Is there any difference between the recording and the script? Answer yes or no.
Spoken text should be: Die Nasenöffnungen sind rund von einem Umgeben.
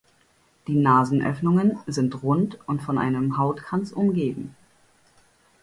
yes